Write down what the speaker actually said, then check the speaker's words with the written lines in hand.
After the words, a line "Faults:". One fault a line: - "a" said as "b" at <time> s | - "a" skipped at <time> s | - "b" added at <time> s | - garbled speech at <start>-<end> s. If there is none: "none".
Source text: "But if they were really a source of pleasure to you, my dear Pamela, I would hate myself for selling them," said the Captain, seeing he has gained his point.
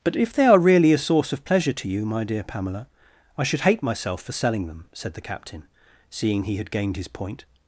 "But if they are really a source of pleasure to you, my dear Pamela, I should hate myself for selling them," said the Captain, seeing he had gained his point.
Faults:
- "were" said as "are" at 0.5 s
- "would" said as "should" at 3.4 s
- "has" said as "had" at 6.6 s